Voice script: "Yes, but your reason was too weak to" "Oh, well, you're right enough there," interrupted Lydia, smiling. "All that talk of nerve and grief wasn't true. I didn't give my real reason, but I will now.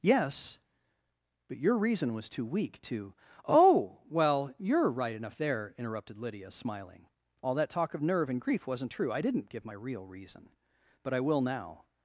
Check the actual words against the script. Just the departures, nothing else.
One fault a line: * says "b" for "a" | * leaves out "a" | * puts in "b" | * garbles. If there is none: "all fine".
all fine